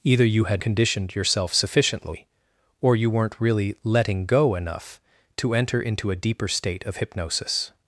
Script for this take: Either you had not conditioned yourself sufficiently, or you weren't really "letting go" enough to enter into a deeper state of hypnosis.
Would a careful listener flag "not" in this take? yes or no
yes